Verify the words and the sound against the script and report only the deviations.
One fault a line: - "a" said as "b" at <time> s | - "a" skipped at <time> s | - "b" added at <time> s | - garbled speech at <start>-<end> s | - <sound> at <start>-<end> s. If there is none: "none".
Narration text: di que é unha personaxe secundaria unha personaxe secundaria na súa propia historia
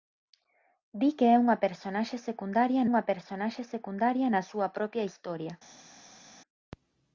none